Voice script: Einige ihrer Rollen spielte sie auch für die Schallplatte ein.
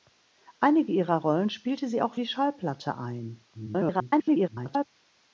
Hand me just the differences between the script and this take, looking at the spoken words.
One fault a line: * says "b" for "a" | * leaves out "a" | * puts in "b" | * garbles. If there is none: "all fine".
* leaves out "für"
* garbles